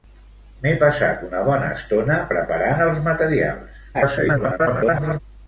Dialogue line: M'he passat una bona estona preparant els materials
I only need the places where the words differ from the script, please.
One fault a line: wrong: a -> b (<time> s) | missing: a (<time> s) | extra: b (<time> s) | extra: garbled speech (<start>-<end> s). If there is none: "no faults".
extra: garbled speech (3.9-5.2 s)